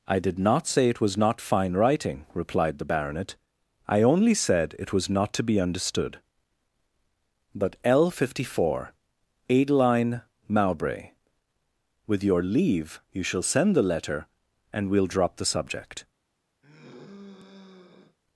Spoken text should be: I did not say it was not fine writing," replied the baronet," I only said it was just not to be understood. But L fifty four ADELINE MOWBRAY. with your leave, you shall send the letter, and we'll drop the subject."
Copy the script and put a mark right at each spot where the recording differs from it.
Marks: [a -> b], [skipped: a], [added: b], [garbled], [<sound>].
I did not say it was not fine writing," replied the baronet," I only said it was [skipped: just] not to be understood. But L fifty four ADELINE MOWBRAY. with your leave, you shall send the letter, and we'll drop the subject." [sigh]